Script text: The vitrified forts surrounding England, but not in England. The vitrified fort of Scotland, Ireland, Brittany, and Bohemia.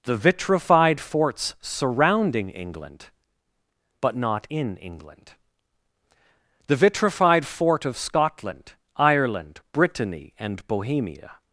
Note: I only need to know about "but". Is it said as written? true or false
true